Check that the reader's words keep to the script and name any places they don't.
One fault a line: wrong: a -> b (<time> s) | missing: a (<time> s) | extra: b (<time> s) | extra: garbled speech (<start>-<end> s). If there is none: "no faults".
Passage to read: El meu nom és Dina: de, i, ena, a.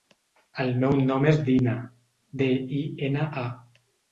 no faults